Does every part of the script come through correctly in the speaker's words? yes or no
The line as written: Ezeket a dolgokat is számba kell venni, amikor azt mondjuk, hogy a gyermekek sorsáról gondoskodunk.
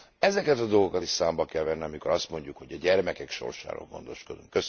yes